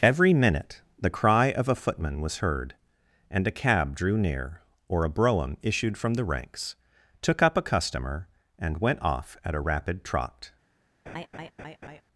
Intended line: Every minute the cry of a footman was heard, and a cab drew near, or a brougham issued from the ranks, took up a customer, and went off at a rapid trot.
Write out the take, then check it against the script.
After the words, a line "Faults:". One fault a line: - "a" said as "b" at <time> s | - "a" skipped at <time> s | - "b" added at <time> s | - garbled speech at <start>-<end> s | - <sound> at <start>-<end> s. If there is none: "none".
Every minute the cry of a footman was heard, and a cab drew near, or a brougham issued from the ranks, took up a customer, and went off at a rapid trot.
Faults:
- laugh at 11.1-12.0 s